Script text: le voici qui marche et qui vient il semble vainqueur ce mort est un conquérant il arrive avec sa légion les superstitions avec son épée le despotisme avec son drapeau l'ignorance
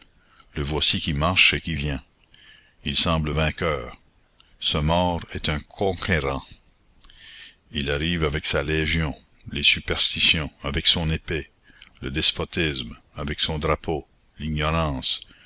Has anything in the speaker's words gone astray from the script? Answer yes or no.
no